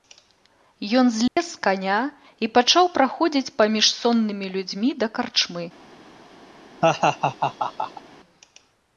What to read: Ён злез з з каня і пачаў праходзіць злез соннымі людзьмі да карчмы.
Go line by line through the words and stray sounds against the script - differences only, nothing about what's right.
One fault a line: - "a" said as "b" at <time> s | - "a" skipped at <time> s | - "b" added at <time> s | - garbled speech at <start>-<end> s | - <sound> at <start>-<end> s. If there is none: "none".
- dropout at 1.3-1.4 s
- "з" skipped at 1.6 s
- "злез" said as "паміж" at 3.6 s
- laugh at 6.8-8.0 s